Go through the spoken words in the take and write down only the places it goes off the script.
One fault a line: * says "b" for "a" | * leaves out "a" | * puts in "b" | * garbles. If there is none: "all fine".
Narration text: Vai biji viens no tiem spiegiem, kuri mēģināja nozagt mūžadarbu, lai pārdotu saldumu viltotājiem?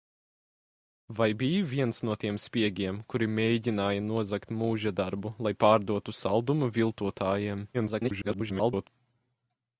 * garbles